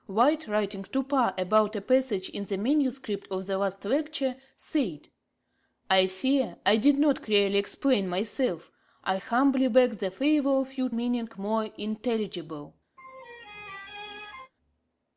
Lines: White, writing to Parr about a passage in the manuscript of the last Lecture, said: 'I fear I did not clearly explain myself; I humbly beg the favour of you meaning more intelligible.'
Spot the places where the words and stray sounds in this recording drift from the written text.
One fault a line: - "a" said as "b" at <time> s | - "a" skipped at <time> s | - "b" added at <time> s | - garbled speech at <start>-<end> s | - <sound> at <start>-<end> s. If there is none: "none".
- laugh at 13.0-14.5 s